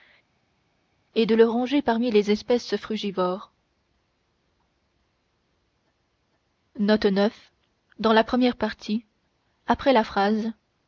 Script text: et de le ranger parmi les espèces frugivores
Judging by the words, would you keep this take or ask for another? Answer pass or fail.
pass